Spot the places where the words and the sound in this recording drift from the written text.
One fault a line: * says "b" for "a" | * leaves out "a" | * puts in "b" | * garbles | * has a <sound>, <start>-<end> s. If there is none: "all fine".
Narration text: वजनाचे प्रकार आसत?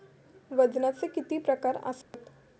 * puts in "किती"
* has a dropout, 2.0-2.1 s